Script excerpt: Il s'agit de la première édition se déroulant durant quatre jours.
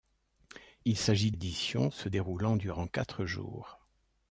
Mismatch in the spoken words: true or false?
true